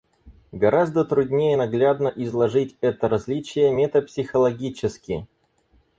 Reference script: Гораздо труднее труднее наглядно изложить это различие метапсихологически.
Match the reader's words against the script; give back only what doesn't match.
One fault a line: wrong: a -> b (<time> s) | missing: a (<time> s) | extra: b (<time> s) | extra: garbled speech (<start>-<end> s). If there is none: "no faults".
missing: труднее (1.6 s)